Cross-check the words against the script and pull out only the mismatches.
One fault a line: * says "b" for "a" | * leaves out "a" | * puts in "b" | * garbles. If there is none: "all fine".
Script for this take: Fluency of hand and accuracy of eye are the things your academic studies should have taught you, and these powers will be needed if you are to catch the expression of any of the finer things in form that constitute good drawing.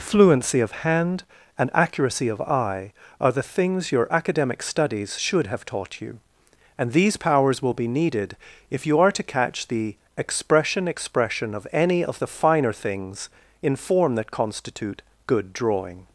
* puts in "expression"